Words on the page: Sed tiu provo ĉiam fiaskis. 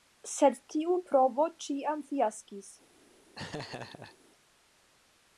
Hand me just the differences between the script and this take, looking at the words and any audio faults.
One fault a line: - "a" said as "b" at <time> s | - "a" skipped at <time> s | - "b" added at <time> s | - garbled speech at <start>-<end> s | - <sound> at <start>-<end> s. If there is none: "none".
- laugh at 3.3-4.2 s